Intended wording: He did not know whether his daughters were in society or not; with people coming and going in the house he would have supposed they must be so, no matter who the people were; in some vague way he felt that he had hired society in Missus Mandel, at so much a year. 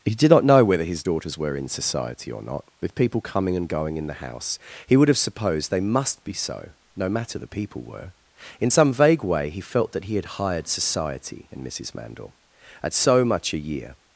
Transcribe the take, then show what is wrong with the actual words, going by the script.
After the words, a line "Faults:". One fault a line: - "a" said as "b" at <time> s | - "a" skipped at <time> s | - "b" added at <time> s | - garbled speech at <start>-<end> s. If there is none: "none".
He did not know whether his daughters were in society or not; with people coming and going in the house he would have supposed they must be so, no matter the people were; in some vague way he felt that he had hired society in Missus Mandel, at so much a year.
Faults:
- "who" skipped at 7.4 s